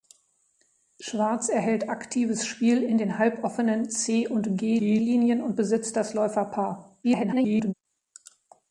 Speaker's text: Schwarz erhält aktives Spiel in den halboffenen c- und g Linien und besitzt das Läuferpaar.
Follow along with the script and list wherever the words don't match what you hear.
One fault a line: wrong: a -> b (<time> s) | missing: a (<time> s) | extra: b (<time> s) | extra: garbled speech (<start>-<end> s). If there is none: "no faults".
extra: g (4.8 s)
extra: garbled speech (7.0-7.7 s)